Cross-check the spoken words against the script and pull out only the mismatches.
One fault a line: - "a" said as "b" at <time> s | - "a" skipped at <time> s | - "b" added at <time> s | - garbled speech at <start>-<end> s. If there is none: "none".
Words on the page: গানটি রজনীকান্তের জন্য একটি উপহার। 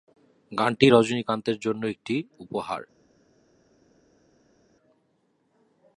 none